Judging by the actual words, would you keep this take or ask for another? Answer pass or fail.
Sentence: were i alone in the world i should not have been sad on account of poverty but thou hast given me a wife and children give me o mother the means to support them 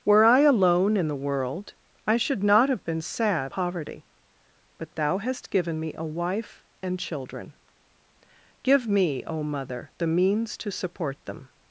fail